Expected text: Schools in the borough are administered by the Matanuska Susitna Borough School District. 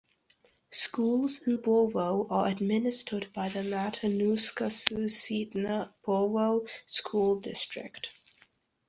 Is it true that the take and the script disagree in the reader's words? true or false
true